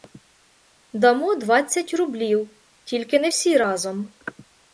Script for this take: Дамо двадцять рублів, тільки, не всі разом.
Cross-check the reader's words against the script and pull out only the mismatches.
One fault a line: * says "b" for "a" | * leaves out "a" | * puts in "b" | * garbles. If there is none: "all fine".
all fine